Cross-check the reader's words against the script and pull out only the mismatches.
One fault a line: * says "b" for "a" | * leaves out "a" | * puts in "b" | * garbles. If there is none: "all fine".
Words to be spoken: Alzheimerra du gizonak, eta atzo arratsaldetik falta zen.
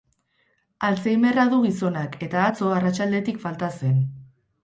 all fine